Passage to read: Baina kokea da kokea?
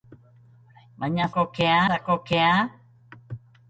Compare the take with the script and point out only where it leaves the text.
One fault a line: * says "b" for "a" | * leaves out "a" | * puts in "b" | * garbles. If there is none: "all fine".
all fine